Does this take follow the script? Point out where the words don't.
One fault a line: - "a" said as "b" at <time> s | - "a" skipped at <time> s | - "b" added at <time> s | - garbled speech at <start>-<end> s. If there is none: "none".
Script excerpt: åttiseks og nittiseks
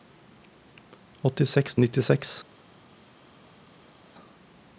none